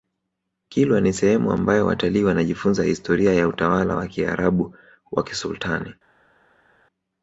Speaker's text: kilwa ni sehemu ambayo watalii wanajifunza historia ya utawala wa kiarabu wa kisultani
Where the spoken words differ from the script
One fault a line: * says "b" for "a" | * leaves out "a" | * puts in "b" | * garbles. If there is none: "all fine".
all fine